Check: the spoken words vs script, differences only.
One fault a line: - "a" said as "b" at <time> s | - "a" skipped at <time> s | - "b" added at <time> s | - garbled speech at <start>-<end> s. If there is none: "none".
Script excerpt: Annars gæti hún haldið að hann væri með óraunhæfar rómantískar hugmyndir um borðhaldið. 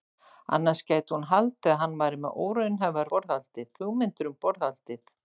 - "rómantískar" said as "borðhaldið" at 3.2 s